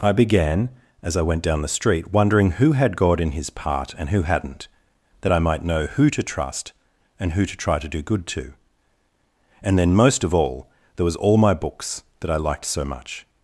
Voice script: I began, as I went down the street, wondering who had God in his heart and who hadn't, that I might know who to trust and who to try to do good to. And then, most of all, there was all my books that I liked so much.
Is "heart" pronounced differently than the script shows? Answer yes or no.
yes